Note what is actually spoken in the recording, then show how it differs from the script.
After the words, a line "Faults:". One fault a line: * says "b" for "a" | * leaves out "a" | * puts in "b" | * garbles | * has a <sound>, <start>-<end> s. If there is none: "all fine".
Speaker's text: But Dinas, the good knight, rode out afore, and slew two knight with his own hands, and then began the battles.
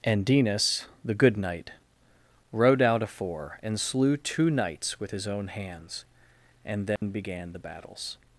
And Dinas, the good knight, rode out afore, and slew two knights with his own hands, and then began the battles.
Faults:
* says "And" for "But"
* says "knights" for "knight"
* has a dropout, 7.0-7.0 s